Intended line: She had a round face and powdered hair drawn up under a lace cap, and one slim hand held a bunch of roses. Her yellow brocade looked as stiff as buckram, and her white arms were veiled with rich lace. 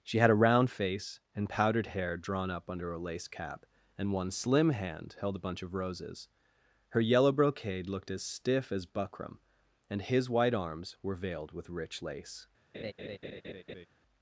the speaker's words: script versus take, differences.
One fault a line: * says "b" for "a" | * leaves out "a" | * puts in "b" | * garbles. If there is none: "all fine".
* says "his" for "her"